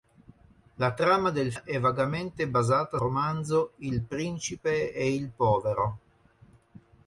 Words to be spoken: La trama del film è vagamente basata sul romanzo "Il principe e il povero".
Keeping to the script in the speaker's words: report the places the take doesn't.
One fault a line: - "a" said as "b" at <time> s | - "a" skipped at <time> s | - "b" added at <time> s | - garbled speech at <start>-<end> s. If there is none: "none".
- "film" skipped at 1.5 s
- "sul" skipped at 3.0 s